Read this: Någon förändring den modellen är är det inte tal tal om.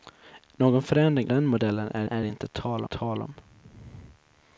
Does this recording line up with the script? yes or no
yes